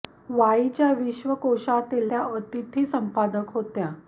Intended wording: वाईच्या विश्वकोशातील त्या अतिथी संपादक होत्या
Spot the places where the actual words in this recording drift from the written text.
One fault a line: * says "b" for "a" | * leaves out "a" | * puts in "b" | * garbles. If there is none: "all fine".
all fine